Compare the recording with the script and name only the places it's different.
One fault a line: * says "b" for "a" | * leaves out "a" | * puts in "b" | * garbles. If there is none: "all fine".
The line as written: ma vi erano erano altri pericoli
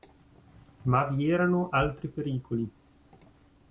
* leaves out "erano"